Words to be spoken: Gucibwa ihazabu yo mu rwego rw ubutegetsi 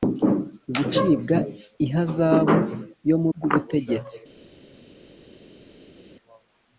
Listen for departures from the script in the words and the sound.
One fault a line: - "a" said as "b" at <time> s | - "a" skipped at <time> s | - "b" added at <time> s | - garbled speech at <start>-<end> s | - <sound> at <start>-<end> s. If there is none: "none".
- "rwego" skipped at 3.3 s